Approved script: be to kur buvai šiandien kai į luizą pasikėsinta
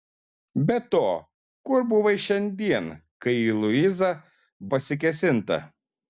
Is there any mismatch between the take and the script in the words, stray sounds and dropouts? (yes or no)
no